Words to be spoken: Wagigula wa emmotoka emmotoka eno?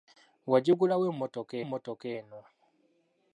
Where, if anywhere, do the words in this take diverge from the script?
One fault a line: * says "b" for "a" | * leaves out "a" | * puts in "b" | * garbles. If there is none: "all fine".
all fine